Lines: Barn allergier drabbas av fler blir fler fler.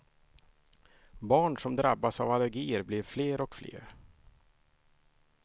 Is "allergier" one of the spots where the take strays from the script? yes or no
yes